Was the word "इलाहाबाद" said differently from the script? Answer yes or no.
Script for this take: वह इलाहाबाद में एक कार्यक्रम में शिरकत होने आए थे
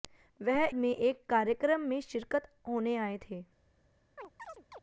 yes